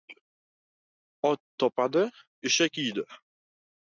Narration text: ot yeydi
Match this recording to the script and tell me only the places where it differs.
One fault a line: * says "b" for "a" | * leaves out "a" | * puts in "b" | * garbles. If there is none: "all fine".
* puts in "topadi eshak"